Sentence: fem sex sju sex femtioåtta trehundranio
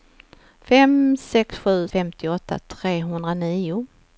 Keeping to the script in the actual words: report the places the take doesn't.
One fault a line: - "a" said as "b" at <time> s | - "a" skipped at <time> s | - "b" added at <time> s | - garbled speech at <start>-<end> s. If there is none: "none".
- "sex" skipped at 1.8 s